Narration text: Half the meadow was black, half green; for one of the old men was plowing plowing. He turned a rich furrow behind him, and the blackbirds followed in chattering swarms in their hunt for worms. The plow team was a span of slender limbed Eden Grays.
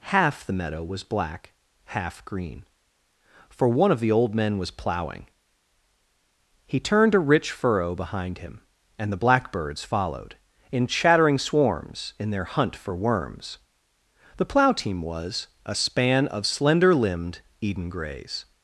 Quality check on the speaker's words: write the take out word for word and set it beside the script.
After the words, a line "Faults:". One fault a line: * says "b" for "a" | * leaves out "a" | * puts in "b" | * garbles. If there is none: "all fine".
Half the meadow was black, half green; for one of the old men was plowing. He turned a rich furrow behind him, and the blackbirds followed in chattering swarms in their hunt for worms. The plow team was a span of slender limbed Eden Grays.
Faults:
* leaves out "plowing"